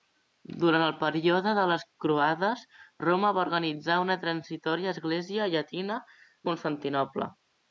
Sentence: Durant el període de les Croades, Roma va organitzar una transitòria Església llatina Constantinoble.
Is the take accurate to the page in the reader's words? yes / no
yes